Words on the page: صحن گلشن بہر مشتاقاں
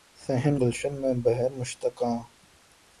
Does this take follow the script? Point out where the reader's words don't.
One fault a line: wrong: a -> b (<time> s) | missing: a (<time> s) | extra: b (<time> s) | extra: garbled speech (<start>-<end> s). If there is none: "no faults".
extra: میں (1.0 s)